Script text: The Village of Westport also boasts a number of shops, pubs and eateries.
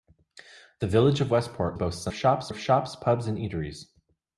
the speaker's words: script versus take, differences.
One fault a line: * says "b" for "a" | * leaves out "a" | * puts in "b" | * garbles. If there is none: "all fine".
* leaves out "also"
* says "shops" for "number"